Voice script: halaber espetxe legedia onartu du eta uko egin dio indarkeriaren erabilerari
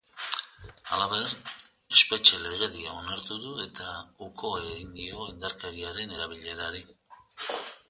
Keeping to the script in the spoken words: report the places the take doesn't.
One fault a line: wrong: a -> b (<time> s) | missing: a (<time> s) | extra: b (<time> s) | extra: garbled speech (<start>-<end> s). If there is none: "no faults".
no faults